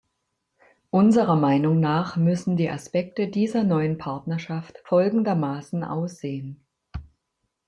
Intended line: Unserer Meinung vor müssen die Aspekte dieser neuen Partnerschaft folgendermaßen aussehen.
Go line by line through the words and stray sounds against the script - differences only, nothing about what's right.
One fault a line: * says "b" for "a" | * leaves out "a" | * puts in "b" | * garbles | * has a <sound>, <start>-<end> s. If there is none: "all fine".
* says "nach" for "vor"